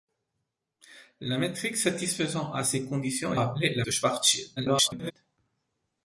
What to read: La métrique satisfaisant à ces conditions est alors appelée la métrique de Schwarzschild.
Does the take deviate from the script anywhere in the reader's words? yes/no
yes